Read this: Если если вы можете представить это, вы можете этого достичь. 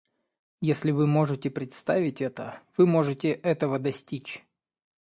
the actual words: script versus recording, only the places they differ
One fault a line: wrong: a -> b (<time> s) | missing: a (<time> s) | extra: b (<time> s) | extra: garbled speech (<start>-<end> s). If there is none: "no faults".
missing: если (0.9 s)